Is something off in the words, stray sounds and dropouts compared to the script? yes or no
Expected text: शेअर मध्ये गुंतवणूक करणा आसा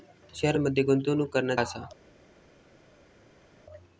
no